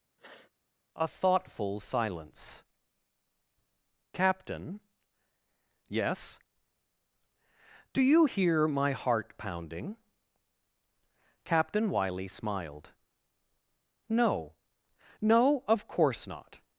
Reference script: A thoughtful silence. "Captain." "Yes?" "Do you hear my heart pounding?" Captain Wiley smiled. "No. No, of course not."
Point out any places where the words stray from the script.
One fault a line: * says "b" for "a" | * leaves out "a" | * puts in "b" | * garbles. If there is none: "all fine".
all fine